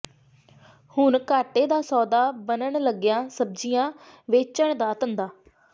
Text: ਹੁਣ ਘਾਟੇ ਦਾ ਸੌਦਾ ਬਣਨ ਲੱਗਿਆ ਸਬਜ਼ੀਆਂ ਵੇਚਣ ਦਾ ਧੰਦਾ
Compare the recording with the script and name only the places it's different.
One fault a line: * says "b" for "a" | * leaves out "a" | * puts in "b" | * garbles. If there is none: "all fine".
all fine